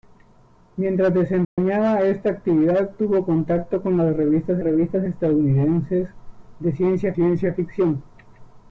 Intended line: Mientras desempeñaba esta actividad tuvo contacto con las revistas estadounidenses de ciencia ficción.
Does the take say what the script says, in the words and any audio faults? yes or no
no